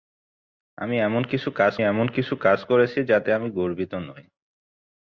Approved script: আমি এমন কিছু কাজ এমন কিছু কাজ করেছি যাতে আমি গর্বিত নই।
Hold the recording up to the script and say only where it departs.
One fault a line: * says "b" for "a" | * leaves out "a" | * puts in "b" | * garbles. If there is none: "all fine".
all fine